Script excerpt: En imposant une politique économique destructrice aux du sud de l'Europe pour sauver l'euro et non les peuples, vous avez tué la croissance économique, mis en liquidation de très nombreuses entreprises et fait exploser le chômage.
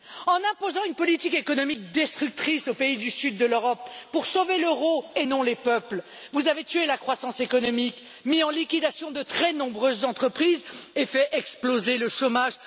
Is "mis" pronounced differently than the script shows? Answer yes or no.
no